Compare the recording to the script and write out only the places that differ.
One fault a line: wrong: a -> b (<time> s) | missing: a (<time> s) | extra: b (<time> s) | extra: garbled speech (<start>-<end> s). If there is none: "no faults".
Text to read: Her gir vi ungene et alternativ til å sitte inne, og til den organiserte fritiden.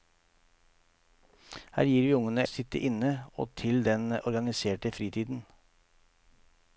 missing: et alternativ til (2.5 s)